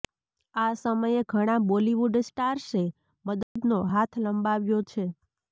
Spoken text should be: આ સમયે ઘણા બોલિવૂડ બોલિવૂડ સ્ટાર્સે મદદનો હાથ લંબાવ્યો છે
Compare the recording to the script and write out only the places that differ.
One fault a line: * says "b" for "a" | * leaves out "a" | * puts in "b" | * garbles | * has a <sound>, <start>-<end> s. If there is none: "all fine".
* leaves out "બોલિવૂડ"
* has a dropout, 3.4-3.6 s